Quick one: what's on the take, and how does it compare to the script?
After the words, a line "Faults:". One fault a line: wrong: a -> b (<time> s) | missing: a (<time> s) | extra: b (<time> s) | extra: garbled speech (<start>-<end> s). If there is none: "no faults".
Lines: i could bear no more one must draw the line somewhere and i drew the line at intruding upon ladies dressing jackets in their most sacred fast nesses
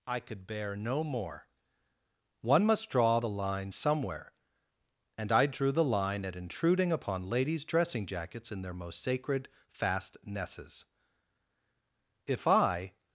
i could bear no more one must draw the line somewhere and i drew the line at intruding upon ladies dressing jackets in their most sacred fast nesses if i
Faults:
extra: if i (12.3 s)